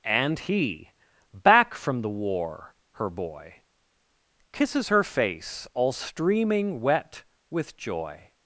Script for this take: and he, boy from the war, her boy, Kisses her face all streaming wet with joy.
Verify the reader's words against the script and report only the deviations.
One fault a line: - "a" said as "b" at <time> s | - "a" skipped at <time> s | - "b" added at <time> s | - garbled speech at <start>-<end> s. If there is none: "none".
- "boy" said as "back" at 1.3 s